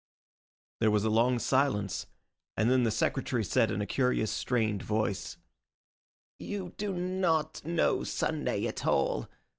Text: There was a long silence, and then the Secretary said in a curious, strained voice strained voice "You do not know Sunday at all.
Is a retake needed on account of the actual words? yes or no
yes